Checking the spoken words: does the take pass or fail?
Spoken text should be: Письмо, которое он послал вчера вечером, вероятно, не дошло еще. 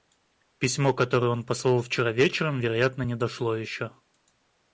pass